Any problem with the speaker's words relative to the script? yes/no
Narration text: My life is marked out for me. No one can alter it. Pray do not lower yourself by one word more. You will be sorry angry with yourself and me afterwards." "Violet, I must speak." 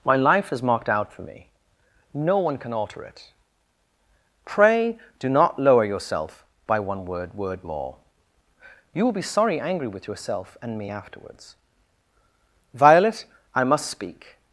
yes